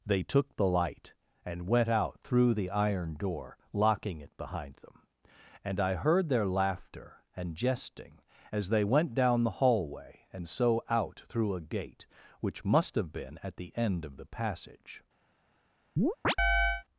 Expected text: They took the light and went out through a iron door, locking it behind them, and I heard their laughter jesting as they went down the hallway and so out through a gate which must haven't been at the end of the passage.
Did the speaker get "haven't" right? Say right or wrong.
wrong